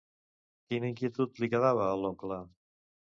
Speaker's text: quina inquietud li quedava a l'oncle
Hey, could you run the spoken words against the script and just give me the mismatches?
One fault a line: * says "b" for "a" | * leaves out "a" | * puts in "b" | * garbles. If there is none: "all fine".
all fine